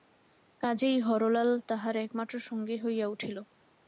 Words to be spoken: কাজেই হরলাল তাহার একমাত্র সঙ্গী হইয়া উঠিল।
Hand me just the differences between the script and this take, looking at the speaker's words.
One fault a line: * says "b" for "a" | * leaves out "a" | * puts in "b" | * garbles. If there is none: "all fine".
all fine